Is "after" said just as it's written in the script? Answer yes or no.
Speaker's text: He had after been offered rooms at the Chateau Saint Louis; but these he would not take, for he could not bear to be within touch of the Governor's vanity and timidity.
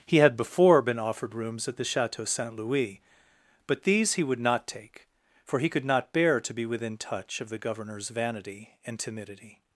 no